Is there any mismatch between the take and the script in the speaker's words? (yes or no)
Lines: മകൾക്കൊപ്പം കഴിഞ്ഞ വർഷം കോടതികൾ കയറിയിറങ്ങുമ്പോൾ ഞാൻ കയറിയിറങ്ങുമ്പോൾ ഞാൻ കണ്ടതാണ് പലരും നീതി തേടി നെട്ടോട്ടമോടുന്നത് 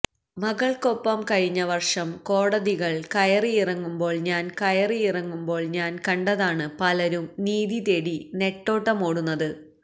no